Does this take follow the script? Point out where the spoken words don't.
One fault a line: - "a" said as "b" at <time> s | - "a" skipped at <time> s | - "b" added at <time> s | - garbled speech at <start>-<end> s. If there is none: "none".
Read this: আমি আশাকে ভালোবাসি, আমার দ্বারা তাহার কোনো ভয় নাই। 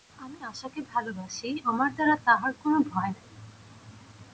none